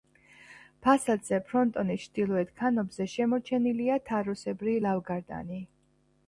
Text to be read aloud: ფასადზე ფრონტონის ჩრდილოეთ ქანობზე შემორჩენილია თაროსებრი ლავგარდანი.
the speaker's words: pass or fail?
pass